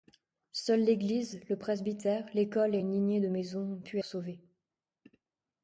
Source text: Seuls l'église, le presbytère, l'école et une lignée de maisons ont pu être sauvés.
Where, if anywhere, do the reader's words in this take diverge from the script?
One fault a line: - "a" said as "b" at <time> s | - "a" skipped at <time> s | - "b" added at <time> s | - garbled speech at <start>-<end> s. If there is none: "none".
- "être" skipped at 4.0 s